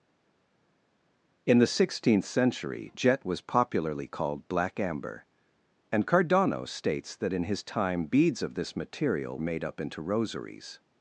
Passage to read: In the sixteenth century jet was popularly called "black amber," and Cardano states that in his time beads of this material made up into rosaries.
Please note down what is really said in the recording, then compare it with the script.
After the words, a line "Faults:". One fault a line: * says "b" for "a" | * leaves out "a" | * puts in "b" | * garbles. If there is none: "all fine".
In the sixteenth century jet was popularly called "black amber," and Cardano states that in his time beads of this material made up into rosaries.
Faults:
all fine